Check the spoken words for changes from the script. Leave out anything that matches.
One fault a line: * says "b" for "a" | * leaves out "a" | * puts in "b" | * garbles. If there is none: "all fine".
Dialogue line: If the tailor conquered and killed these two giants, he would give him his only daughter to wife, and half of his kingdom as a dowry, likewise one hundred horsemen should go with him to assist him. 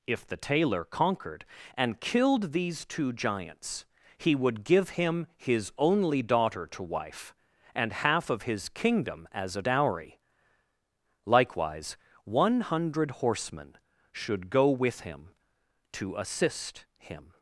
all fine